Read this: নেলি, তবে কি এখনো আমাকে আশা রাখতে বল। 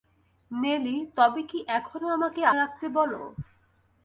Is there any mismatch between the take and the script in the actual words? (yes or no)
yes